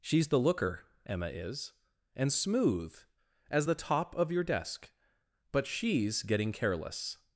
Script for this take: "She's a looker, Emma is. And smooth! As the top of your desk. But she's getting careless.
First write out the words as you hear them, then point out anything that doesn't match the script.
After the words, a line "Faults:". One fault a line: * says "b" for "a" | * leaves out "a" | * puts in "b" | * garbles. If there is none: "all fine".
"She's the looker, Emma is. And smooth! As the top of your desk. But she's getting careless.
Faults:
* says "the" for "a"